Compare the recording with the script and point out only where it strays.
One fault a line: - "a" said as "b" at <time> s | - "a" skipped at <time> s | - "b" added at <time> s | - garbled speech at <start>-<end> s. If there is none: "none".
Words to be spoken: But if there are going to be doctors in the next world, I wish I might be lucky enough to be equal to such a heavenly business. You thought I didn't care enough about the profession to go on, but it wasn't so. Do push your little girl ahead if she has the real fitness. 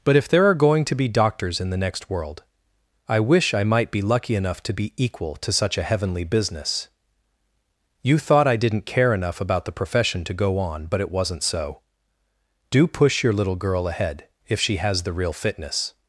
none